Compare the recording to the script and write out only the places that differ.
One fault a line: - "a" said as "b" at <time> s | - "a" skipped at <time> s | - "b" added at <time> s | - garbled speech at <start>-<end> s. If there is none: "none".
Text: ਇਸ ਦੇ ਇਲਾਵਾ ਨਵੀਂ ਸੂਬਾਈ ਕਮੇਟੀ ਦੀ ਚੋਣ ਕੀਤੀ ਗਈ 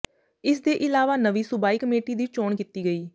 none